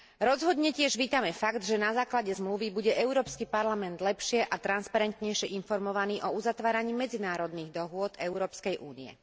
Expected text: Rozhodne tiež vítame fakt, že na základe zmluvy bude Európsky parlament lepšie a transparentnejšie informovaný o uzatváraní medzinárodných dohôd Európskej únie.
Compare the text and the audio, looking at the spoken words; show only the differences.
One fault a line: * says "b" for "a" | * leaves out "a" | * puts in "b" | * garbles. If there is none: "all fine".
all fine